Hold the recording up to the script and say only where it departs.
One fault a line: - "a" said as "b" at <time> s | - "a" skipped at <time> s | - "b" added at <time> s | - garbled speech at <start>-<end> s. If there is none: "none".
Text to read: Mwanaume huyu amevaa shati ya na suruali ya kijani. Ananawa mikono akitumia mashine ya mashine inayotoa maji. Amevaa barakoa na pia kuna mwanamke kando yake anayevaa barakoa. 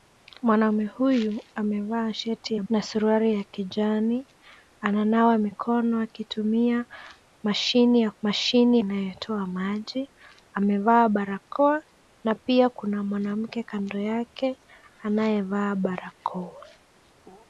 none